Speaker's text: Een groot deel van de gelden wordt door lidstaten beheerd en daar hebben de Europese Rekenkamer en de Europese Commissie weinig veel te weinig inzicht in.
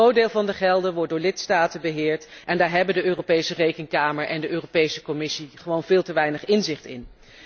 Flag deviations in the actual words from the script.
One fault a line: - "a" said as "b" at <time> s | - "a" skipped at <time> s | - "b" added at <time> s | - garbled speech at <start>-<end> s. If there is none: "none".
- "weinig" said as "gewoon" at 5.5 s